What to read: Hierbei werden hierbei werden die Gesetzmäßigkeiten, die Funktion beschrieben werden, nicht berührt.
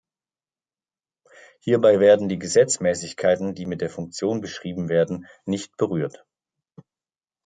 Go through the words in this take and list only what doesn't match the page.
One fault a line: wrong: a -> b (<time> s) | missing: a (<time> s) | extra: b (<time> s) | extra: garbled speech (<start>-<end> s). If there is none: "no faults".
wrong: hierbei werden -> die Gesetzmäßigkeiten (2.3 s)
wrong: Gesetzmäßigkeiten die -> mit der (3.7 s)